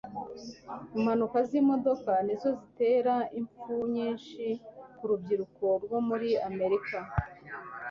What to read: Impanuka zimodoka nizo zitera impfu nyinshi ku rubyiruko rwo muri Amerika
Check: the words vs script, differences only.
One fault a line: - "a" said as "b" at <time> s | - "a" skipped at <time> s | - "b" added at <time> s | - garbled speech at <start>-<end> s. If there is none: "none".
none